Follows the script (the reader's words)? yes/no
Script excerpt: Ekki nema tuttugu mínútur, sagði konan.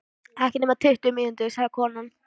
yes